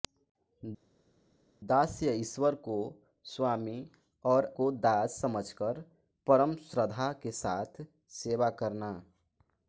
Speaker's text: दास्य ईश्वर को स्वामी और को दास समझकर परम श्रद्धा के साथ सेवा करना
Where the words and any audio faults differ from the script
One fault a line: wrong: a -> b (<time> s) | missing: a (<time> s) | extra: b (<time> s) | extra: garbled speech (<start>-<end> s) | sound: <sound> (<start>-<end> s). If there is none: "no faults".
no faults